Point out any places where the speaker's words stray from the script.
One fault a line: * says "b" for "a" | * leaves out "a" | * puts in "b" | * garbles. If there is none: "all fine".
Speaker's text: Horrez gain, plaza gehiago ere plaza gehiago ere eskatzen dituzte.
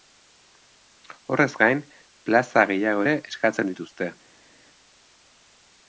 * leaves out "plaza gehiago ere"